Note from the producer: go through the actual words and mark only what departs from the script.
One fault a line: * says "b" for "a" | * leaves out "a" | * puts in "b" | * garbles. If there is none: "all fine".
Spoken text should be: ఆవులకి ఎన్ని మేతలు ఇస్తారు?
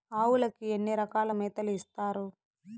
* puts in "రకాల"